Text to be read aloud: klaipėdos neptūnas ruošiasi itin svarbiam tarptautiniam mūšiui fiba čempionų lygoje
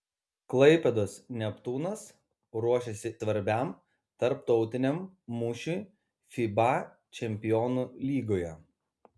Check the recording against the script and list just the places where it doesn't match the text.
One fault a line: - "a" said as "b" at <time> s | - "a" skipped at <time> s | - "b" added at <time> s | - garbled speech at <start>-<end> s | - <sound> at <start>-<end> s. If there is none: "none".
- "itin" skipped at 3.1 s